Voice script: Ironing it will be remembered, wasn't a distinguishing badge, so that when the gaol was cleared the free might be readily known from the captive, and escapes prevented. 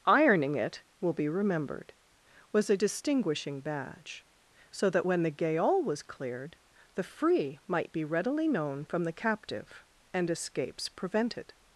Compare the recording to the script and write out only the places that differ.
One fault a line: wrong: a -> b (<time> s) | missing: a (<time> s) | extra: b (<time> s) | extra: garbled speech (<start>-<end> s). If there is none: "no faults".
wrong: wasn't -> was (2.5 s)